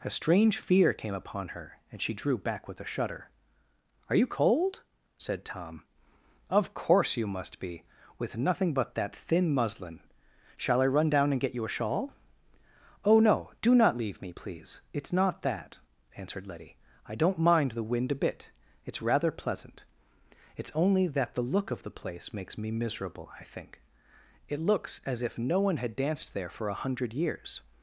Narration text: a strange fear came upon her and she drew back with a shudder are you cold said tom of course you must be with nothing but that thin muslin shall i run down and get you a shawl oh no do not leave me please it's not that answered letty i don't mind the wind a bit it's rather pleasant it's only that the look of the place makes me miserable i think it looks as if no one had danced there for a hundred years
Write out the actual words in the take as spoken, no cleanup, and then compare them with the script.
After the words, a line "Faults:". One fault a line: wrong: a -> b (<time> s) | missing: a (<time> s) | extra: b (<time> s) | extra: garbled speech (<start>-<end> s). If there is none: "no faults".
a strange fear came upon her and she drew back with a shudder are you cold said tom of course you must be with nothing but that thin muslin shall i run down and get you a shawl oh no do not leave me please it's not that answered letty i don't mind the wind a bit it's rather pleasant it's only that the look of the place makes me miserable i think it looks as if no one had danced there for a hundred years
Faults:
no faults